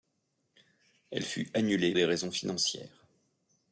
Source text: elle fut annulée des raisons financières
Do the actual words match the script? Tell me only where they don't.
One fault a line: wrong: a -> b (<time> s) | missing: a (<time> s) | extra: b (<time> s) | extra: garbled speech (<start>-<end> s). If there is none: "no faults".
no faults